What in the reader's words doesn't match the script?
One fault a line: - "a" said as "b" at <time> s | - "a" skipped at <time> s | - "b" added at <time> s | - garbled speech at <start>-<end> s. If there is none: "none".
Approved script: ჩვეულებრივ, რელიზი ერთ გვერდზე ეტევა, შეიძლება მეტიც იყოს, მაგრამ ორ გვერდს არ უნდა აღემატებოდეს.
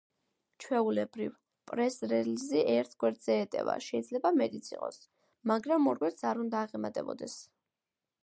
- "პრეს" added at 1.7 s